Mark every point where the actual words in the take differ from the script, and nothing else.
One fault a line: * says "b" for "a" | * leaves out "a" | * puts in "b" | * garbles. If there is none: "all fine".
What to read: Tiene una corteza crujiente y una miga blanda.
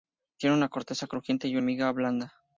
* leaves out "una"